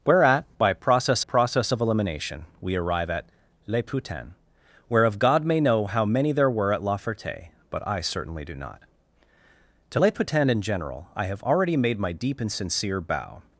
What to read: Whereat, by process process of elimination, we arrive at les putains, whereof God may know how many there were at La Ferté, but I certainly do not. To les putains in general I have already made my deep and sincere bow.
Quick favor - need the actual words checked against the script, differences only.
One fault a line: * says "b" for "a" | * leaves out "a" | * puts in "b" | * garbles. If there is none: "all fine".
all fine